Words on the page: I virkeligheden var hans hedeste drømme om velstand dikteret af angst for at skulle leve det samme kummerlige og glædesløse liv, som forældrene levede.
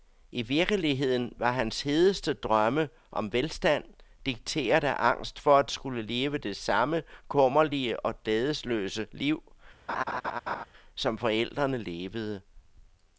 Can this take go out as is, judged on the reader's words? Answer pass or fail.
pass